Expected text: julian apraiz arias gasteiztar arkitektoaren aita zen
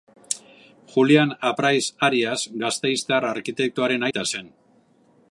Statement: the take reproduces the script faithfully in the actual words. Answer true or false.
true